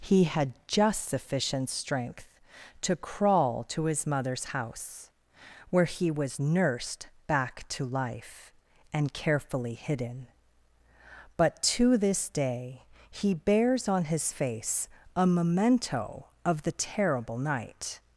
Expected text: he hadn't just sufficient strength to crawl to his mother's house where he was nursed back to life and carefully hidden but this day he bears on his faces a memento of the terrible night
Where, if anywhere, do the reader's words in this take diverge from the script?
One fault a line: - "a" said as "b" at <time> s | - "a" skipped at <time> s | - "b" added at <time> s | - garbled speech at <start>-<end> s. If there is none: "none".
- "hadn't" said as "had" at 0.2 s
- "to" added at 11.6 s
- "faces" said as "face" at 14.3 s